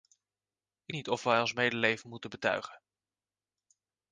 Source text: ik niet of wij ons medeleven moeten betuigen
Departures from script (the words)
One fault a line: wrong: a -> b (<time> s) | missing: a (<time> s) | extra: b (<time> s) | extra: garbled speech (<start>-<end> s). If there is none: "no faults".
no faults